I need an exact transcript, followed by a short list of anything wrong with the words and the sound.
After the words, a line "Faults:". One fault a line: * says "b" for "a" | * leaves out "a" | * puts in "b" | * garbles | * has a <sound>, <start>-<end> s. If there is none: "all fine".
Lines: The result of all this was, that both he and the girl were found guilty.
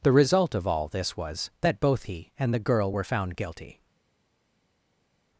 The result of all this was, that both he and the girl were found guilty.
Faults:
all fine